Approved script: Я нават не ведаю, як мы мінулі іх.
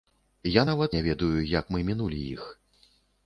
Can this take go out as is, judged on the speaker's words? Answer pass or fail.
pass